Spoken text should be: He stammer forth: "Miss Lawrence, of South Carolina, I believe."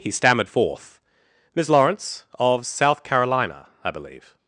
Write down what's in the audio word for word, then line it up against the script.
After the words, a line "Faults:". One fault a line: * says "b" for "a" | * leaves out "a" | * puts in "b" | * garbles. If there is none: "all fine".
He stammered forth: "Miss Lawrence, of South Carolina, I believe."
Faults:
* says "stammered" for "stammer"